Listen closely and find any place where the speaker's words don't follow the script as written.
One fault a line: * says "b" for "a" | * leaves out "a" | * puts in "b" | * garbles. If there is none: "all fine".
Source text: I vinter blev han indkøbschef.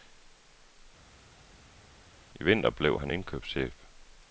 all fine